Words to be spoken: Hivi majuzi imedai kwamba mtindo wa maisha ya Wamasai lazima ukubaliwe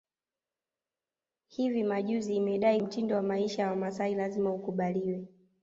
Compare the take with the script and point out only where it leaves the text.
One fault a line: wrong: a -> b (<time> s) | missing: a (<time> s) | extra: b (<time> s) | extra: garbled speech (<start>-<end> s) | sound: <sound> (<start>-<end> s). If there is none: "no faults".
missing: kwamba (2.8 s)